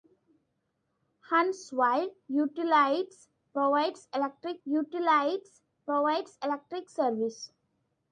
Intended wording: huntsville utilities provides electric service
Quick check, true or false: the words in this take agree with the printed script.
false